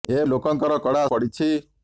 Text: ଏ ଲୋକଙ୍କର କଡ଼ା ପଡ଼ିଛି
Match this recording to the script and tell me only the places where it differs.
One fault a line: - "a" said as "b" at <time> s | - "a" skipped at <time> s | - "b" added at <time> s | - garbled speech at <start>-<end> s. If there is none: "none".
none